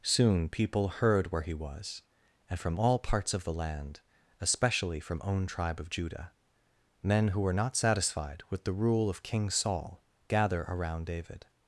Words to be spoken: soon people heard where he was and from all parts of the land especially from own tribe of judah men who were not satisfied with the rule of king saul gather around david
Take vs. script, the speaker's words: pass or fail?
pass